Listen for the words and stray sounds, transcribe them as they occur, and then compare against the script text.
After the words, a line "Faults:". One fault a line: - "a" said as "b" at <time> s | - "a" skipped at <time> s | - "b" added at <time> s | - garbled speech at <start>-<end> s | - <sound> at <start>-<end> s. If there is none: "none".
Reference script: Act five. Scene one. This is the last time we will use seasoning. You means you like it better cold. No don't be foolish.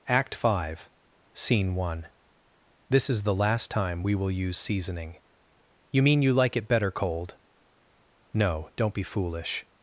Act five. Scene one. This is the last time we will use seasoning. You mean you like it better cold. No don't be foolish.
Faults:
- "means" said as "mean" at 6.0 s